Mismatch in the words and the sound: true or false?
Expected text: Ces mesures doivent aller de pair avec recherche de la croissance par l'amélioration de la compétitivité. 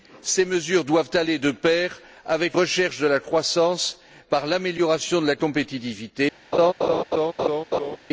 true